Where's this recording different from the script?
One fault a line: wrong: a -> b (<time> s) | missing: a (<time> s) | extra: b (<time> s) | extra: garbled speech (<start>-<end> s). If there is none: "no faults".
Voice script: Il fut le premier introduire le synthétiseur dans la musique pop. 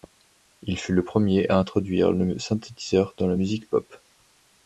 extra: à (1.5 s)